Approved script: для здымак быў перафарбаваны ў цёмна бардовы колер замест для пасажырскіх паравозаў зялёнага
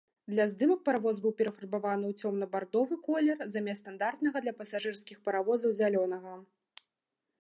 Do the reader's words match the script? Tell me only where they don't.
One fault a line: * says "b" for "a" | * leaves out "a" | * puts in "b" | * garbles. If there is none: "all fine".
* puts in "паравоз"
* puts in "стандартнага"